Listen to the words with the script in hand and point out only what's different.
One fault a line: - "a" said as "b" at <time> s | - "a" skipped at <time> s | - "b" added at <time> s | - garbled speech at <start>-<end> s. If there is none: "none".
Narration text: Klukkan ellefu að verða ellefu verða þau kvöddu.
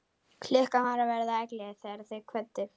- "ellefu" said as "var" at 0.9 s
- "verða" said as "þegar" at 1.9 s